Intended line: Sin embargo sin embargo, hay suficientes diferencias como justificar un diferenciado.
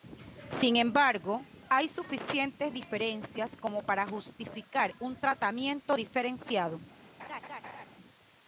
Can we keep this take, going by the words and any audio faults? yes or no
no